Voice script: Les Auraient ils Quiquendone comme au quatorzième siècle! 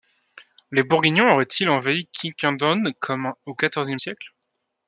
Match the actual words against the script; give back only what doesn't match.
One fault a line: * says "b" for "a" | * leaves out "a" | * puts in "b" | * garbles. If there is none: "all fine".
* puts in "Bourguignons"
* puts in "envahi"